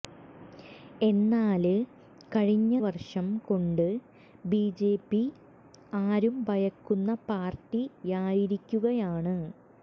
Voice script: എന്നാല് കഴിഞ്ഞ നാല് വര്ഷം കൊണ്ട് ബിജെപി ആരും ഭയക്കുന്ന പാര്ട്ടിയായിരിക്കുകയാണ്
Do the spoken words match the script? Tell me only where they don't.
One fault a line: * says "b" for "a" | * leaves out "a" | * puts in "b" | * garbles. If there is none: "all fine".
* leaves out "നാല്"